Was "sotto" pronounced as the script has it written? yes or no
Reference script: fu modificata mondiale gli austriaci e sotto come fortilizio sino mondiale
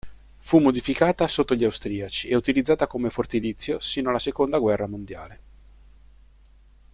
no